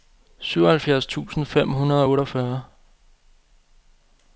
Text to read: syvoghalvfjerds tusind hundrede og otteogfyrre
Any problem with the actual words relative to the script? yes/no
yes